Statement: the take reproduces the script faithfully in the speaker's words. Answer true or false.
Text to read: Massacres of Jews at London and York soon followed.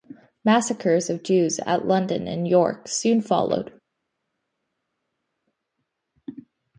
true